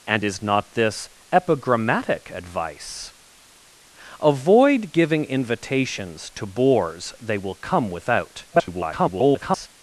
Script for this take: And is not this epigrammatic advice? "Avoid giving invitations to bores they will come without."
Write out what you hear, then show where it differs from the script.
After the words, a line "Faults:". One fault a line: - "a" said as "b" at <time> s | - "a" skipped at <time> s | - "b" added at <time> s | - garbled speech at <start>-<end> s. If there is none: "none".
And is not this epigrammatic advice? "Avoid giving invitations to bores they will come without." [garbled]
Faults:
- garbled speech at 8.5-9.7 s